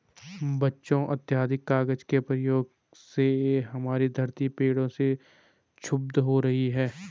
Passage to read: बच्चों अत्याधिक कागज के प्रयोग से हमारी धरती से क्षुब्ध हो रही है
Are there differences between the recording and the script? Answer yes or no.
yes